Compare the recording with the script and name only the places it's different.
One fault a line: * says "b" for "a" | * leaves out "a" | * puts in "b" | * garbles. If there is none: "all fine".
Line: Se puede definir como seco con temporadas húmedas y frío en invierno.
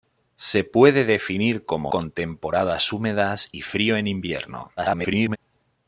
* leaves out "seco"
* garbles